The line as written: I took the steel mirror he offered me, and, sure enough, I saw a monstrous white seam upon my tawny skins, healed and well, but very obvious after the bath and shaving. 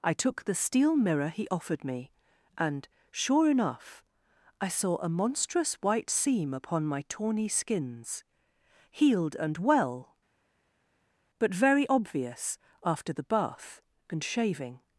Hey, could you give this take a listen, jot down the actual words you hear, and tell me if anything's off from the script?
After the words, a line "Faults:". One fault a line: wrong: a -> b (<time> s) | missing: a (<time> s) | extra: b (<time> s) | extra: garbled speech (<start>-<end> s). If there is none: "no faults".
I took the steel mirror he offered me, and, sure enough, I saw a monstrous white seam upon my tawny skins, healed and well, but very obvious after the bath and shaving.
Faults:
no faults